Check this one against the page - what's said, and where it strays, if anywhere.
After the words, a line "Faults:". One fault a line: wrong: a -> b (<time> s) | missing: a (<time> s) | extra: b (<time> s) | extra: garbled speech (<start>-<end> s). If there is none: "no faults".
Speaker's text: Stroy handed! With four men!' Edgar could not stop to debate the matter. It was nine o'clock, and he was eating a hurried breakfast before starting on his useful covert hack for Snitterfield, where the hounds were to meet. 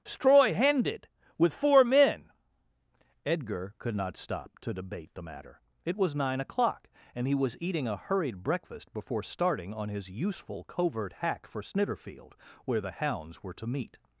Stroy handed! With four men!' Edgar could not stop to debate the matter. It was nine o'clock, and he was eating a hurried breakfast before starting on his useful covert hack for Snitterfield, where the hounds were to meet.
Faults:
no faults